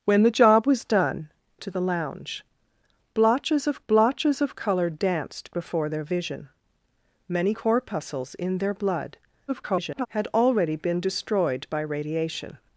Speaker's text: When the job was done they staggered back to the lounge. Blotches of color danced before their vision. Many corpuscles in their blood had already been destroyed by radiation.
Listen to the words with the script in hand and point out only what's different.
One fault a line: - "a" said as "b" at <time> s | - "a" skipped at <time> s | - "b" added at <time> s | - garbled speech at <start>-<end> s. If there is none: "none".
- "they staggered back" skipped at 1.3 s
- "blotches of" added at 3.9 s
- garbled speech at 9.5-10.1 s